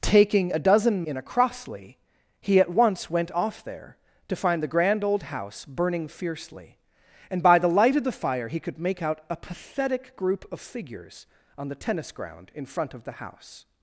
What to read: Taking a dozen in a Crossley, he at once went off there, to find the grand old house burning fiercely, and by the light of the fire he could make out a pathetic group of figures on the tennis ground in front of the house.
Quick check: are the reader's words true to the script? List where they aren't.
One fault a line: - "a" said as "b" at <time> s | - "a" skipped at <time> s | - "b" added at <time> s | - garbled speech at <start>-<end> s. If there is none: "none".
none